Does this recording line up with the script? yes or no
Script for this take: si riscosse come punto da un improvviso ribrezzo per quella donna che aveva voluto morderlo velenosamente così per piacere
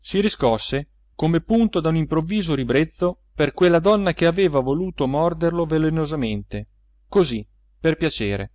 yes